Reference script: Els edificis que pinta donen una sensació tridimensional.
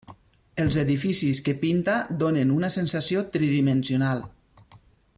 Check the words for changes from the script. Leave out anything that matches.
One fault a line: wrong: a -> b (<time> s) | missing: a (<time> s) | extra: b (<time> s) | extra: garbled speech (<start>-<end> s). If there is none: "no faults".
no faults